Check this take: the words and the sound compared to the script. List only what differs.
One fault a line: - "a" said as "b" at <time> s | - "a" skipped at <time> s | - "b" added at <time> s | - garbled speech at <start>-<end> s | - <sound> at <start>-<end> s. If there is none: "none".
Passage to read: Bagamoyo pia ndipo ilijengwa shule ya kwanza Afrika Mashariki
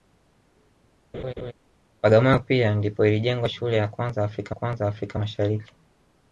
- laugh at 1.1-1.5 s
- "kwanza Afrika" added at 4.5 s